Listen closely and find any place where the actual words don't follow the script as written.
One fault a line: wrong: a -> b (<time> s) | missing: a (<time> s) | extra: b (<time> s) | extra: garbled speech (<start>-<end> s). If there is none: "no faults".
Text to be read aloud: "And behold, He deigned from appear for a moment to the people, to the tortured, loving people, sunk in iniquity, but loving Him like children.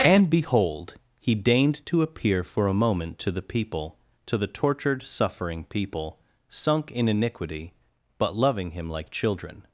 wrong: from -> to (1.9 s)
wrong: loving -> suffering (5.0 s)